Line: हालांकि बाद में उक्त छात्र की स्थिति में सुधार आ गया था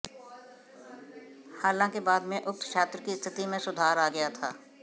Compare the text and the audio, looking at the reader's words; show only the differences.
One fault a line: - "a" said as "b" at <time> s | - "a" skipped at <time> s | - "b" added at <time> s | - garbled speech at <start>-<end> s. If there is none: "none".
none